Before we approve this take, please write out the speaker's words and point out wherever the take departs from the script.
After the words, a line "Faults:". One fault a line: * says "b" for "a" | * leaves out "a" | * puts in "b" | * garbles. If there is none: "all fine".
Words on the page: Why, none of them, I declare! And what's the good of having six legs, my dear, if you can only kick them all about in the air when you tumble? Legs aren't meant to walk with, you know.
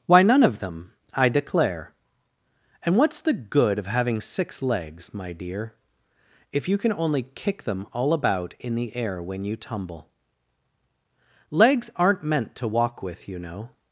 Why, none of them, I declare! And what's the good of having six legs, my dear, if you can only kick them all about in the air when you tumble? Legs aren't meant to walk with, you know.
Faults:
all fine